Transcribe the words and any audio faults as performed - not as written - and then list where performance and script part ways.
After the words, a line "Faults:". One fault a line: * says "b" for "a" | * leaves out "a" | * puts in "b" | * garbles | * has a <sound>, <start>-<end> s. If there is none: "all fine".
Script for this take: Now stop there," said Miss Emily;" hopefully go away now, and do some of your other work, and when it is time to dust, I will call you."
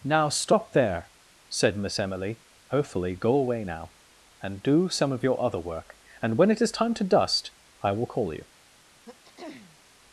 Now stop there," said Miss Emily;" hopefully go away now, and do some of your other work, and when it is time to dust, I will call you."
Faults:
* has a throat clearing, 9.1-9.8 s